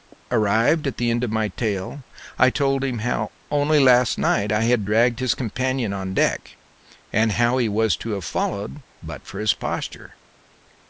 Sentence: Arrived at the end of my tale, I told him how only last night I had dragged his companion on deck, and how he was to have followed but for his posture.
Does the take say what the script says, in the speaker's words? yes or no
yes